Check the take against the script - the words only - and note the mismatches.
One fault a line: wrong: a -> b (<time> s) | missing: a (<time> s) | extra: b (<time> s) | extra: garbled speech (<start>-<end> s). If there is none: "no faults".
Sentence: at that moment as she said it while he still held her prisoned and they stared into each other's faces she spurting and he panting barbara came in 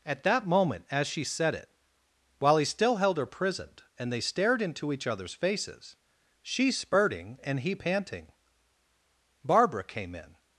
no faults